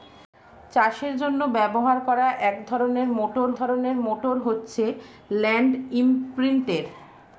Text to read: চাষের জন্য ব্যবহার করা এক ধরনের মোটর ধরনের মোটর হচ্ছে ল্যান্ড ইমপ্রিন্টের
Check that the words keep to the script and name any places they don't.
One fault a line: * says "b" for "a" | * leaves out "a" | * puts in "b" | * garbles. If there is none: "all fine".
all fine